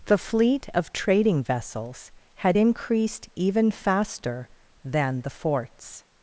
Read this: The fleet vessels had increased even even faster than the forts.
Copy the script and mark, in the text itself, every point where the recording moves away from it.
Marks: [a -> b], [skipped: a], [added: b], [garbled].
The fleet [added: of trading] vessels had increased even [skipped: even] faster than the forts.